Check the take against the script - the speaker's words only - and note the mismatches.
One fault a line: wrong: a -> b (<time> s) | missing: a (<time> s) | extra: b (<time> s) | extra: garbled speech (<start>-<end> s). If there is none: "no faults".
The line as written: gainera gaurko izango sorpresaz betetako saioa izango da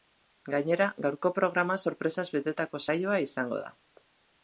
wrong: izango -> programa (1.4 s)